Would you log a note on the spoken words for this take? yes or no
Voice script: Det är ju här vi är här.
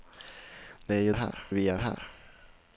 no